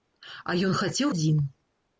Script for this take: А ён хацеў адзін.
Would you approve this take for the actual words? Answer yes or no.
yes